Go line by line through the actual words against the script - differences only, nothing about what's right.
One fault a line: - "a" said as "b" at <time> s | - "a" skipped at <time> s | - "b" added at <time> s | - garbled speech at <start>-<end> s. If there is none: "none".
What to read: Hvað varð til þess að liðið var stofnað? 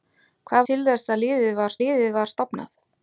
- "varð" skipped at 0.6 s
- "liðið var" added at 1.8 s